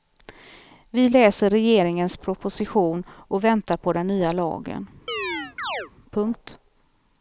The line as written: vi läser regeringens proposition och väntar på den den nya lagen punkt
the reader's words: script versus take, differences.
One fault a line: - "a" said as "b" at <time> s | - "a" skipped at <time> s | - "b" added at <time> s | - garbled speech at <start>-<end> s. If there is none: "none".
- "den" skipped at 4.1 s